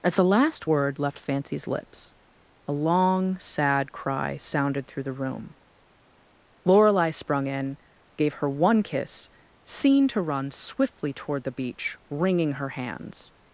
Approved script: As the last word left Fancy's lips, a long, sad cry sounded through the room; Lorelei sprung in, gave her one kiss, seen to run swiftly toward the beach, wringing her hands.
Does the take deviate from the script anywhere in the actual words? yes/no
no